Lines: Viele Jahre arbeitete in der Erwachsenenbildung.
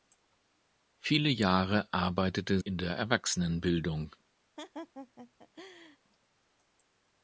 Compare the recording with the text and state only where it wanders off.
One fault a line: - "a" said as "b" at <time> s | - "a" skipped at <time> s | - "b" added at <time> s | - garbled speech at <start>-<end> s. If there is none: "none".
none